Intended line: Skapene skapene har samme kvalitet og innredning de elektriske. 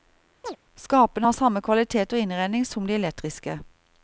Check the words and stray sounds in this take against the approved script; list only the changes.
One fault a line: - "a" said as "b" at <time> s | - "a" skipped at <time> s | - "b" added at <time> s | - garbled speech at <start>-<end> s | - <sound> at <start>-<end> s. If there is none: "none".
- chirp at 0.4-0.6 s
- "skapene" skipped at 1.3 s
- "som" added at 2.6 s